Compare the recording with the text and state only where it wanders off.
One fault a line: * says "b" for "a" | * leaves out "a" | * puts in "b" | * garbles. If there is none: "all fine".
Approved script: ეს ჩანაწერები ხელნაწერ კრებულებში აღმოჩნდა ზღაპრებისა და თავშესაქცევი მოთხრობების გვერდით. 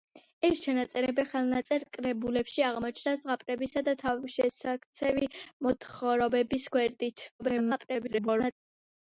* garbles